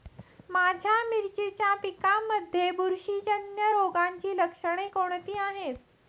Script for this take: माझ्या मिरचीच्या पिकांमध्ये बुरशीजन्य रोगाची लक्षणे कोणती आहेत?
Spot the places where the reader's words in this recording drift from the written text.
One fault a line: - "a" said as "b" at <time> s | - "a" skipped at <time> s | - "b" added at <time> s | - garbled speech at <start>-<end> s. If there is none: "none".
none